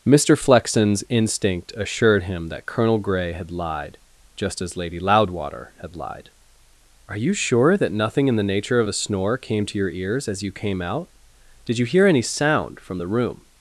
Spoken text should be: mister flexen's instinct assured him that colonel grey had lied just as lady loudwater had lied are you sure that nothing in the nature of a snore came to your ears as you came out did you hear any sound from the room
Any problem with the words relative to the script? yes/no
no